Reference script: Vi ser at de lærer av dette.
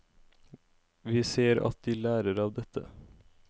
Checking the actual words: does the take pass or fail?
pass